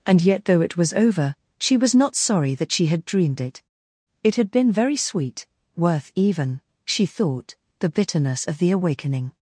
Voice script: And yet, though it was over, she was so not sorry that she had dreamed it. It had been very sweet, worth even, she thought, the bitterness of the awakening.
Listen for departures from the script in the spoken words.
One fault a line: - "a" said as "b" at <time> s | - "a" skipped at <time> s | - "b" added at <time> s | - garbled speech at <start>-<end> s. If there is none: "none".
- "so" skipped at 1.9 s